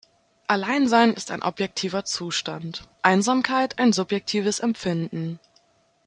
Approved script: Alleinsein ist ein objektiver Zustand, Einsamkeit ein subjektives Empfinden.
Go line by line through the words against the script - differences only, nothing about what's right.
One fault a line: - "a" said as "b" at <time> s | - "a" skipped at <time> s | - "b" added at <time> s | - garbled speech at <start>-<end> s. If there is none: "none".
none